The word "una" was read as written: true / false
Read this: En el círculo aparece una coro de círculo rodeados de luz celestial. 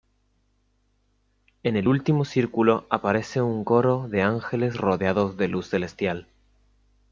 false